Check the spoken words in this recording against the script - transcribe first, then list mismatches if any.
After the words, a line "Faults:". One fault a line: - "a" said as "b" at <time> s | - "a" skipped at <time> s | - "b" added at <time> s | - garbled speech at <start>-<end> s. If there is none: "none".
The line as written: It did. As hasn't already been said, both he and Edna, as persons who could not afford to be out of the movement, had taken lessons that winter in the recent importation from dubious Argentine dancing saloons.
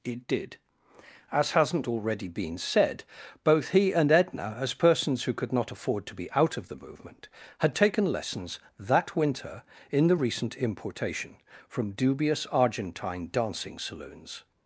It did. As hasn't already been said, both he and Edna, as persons who could not afford to be out of the movement, had taken lessons that winter in the recent importation from dubious Argentine dancing saloons.
Faults:
none